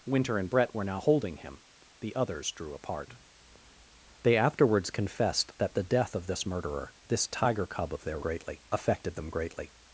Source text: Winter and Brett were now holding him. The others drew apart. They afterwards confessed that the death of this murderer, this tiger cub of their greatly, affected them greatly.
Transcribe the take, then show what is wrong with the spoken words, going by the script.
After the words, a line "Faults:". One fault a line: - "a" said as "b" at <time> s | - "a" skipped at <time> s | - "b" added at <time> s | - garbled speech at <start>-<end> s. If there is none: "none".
Winter and Brett were now holding him. The others drew apart. They afterwards confessed that the death of this murderer, this tiger cub of their greatly, affected them greatly.
Faults:
none